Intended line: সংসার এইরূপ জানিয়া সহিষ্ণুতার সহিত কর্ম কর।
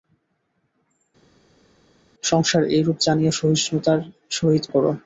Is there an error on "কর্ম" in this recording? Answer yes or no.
yes